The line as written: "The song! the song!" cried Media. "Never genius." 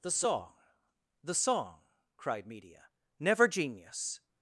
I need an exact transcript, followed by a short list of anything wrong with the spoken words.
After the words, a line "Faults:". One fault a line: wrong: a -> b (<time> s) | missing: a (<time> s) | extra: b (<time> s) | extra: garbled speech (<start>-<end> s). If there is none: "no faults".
"The song! the song!" cried Media. "Never genius."
Faults:
no faults